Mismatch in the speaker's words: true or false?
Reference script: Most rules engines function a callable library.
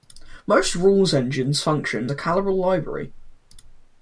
false